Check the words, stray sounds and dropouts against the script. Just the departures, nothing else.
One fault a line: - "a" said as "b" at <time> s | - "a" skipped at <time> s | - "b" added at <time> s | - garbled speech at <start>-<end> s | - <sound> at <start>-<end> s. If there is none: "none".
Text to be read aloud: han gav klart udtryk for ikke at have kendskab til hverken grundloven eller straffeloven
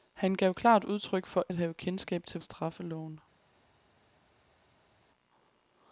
- "ikke" skipped at 1.4 s
- "hverken grundloven eller" skipped at 2.4 s